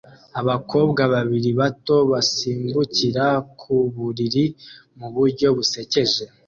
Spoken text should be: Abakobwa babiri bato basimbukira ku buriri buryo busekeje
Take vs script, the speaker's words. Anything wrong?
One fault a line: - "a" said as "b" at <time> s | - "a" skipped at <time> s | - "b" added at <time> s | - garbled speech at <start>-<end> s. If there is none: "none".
- "mu" added at 5.0 s